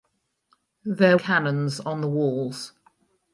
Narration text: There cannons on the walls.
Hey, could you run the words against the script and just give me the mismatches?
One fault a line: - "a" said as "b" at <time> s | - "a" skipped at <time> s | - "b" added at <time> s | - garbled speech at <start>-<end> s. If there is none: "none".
none